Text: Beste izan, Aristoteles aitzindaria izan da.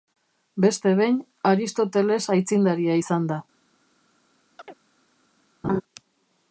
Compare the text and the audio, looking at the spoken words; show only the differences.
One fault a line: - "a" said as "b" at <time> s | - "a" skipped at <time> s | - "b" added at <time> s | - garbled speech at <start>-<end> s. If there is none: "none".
- "izan" said as "behin" at 1.0 s